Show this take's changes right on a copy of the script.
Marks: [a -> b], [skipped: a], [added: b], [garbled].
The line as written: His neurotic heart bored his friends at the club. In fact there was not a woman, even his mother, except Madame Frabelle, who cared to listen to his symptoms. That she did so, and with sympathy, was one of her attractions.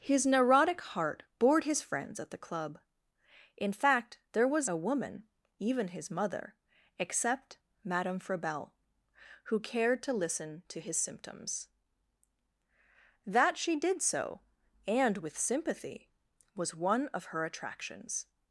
His neurotic heart bored his friends at the club. In fact there was [skipped: not] a woman, even his mother, except Madame Frabelle, who cared to listen to his symptoms. That she did so, and with sympathy, was one of her attractions.